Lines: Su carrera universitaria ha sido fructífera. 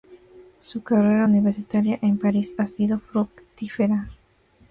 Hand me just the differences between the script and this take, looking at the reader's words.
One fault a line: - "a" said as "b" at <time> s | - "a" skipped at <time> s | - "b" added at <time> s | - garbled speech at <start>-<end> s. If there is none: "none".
- "en París" added at 2.0 s